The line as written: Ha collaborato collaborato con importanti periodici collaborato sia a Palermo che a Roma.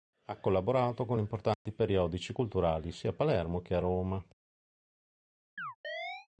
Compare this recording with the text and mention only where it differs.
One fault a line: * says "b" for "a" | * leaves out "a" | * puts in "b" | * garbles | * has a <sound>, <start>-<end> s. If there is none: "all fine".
* leaves out "collaborato"
* has a dropout, 1.5-1.7 s
* says "culturali" for "collaborato"
* has a chirp, 5.6-6.3 s